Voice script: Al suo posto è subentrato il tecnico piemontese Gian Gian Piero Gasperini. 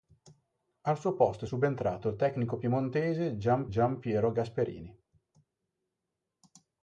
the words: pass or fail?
pass